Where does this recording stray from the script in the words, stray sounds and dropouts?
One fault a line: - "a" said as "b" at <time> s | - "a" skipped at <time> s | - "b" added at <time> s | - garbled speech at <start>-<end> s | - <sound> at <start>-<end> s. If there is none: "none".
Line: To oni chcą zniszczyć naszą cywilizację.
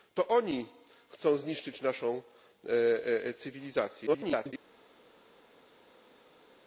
- garbled speech at 4.1-4.5 s